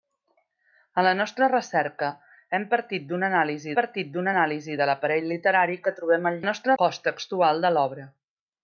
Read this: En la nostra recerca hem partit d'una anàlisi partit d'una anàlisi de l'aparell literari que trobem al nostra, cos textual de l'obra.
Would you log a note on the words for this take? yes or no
no